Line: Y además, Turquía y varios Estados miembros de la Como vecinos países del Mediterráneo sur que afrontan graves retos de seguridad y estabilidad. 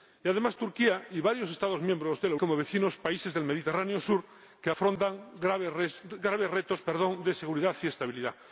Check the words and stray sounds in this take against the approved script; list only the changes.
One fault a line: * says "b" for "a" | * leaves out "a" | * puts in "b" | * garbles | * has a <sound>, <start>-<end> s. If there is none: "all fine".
all fine